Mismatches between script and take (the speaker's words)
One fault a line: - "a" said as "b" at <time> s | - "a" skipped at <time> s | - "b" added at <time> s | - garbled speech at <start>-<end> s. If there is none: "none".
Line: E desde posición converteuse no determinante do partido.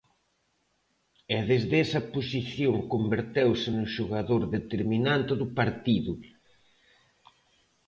- "esa" added at 1.8 s
- "xogador" added at 4.0 s